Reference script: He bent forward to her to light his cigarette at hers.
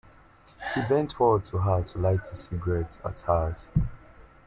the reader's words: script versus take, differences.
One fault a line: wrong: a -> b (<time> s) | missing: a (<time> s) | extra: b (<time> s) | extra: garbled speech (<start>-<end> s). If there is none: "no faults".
no faults